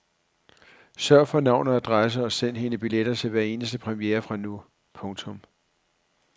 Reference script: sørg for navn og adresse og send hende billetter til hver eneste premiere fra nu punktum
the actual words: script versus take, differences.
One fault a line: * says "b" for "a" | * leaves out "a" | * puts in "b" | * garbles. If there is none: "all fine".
all fine